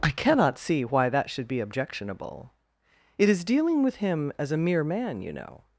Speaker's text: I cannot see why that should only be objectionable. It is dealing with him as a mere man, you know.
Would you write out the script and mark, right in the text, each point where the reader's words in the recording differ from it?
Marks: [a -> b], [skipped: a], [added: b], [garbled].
I cannot see why that should [skipped: only] be objectionable. It is dealing with him as a mere man, you know.